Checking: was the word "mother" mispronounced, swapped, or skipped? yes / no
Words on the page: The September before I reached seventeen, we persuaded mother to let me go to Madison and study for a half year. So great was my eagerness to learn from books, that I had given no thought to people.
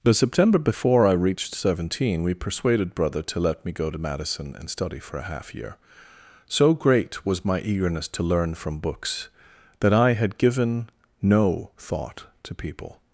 yes